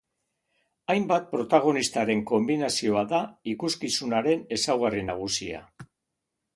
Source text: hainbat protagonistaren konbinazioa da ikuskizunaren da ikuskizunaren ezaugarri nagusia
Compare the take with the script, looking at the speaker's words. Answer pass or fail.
fail